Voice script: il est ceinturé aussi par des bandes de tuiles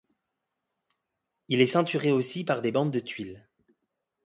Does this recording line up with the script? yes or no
yes